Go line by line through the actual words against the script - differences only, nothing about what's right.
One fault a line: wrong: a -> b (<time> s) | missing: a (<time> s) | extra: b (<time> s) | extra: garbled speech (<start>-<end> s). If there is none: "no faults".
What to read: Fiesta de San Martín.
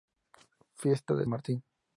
missing: San (1.3 s)